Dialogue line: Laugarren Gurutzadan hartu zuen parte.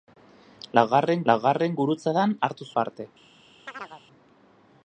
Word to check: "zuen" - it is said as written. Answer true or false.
false